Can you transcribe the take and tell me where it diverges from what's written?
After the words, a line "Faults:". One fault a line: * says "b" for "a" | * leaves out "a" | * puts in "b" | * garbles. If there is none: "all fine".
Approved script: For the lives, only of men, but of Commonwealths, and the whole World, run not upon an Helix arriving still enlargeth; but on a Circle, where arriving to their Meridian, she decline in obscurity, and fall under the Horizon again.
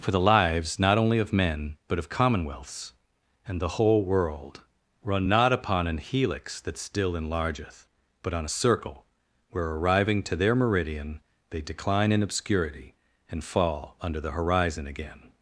For the lives, not only of men, but of Commonwealths, and the whole World, run not upon an Helix that still enlargeth; but on a Circle, where arriving to their Meridian, they decline in obscurity, and fall under the Horizon again.
Faults:
* puts in "not"
* says "that" for "arriving"
* says "they" for "she"